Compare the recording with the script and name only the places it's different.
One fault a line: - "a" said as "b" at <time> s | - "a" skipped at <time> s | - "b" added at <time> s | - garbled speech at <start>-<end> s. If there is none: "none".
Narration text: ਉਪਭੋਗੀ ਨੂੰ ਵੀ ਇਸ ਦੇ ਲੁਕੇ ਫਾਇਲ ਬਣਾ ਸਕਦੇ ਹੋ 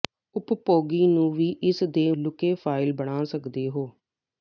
none